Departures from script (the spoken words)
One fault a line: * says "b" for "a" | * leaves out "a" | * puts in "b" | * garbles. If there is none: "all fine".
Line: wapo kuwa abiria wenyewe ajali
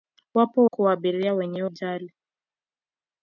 all fine